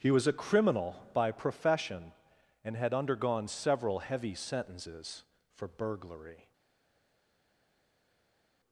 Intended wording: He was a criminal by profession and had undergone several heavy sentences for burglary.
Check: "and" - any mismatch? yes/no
no